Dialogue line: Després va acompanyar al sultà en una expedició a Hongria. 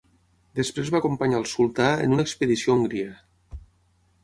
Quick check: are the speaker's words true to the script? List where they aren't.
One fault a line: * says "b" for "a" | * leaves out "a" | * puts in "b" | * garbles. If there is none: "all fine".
all fine